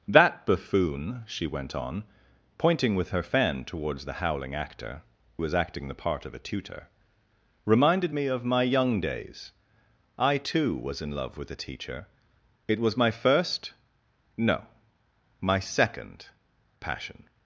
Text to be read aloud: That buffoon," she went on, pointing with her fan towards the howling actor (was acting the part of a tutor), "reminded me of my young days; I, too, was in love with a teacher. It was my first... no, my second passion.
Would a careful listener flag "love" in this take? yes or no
no